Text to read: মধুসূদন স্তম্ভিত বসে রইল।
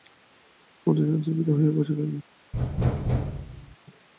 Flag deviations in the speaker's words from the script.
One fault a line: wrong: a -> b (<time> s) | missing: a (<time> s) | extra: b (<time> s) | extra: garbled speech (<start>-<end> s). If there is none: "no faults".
extra: হয়ে (1.6 s)